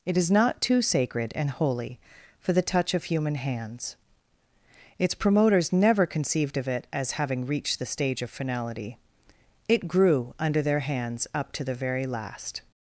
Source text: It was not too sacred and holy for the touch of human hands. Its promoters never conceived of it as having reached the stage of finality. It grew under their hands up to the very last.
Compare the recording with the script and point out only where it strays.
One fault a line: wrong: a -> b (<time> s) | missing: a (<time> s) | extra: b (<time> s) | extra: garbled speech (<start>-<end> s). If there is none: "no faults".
wrong: was -> is (0.2 s)